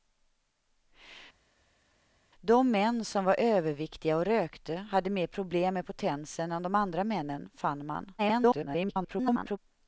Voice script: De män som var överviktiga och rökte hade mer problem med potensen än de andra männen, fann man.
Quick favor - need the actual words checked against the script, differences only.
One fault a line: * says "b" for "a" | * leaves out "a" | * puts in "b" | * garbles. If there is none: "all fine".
* garbles